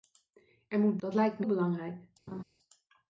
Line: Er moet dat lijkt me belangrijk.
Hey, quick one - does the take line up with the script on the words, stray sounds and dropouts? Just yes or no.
no